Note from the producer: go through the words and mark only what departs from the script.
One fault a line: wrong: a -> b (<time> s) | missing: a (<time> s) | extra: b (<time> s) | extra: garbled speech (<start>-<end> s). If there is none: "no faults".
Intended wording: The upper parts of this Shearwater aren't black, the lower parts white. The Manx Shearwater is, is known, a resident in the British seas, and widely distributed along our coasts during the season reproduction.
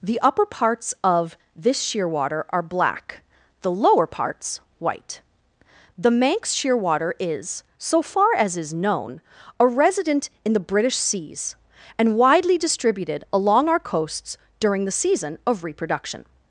wrong: aren't -> are (2.5 s)
extra: so far as (7.8 s)
extra: of (15.4 s)